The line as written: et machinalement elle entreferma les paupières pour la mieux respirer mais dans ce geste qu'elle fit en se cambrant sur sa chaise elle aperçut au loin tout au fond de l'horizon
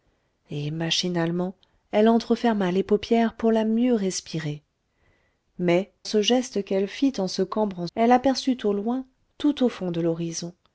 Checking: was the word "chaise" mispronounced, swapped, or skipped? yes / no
yes